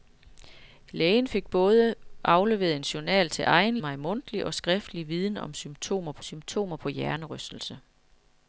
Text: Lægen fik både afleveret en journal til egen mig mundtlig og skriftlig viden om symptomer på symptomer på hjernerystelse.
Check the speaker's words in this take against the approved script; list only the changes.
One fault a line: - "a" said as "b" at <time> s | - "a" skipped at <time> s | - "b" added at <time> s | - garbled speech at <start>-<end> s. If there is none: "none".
none